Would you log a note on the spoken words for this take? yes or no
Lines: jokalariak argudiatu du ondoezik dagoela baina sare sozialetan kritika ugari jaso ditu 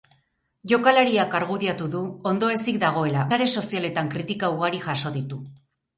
yes